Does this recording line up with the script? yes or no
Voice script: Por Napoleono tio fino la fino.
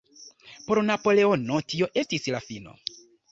no